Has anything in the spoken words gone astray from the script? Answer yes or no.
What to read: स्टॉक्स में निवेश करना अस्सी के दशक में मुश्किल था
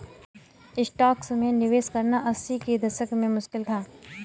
no